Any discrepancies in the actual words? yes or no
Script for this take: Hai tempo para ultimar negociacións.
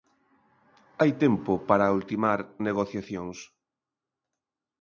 no